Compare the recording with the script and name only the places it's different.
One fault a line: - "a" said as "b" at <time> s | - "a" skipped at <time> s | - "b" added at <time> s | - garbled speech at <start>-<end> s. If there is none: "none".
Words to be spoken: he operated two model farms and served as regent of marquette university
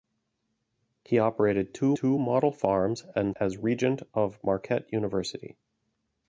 - "two" added at 2.0 s
- "served" skipped at 3.4 s